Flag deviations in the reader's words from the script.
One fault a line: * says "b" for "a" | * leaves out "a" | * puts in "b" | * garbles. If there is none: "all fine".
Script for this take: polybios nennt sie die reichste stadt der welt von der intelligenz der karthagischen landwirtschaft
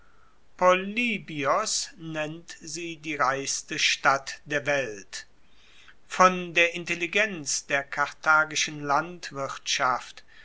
all fine